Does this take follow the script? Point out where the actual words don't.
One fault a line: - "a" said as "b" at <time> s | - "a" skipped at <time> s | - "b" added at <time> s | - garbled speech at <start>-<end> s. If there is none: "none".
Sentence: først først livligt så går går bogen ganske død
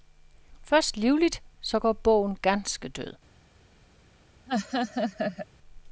- "først" skipped at 1.0 s
- "går" skipped at 1.9 s